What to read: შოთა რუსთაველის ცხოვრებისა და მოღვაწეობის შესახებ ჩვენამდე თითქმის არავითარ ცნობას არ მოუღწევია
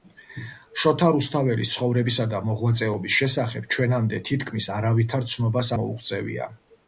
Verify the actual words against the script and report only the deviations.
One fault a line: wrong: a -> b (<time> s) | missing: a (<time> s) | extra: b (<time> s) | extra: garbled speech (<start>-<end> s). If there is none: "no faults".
missing: არ (5.7 s)